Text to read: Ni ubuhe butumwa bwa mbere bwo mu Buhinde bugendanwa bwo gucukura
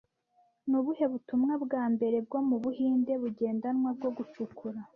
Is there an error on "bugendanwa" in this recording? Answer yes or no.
no